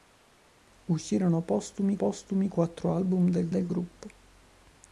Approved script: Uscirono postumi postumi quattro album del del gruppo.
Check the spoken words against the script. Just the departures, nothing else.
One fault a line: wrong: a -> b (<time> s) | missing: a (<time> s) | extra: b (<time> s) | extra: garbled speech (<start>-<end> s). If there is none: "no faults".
no faults